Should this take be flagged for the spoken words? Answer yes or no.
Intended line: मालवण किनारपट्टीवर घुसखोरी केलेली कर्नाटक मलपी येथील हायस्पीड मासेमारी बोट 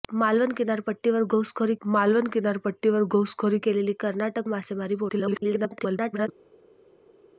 yes